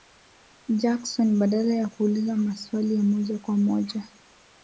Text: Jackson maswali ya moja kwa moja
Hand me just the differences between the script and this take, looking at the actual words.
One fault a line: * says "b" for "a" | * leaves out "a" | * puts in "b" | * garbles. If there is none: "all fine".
* puts in "badala ya kuuliza"